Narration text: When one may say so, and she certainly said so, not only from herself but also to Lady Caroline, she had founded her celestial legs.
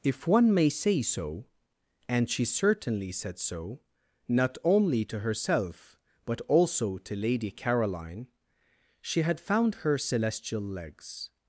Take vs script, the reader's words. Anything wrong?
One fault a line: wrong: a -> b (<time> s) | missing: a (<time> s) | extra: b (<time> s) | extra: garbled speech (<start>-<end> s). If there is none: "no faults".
wrong: When -> If (0.0 s)
wrong: from -> to (5.0 s)
wrong: founded -> found (9.4 s)